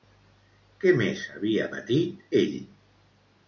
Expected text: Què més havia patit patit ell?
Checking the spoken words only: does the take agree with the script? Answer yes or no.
no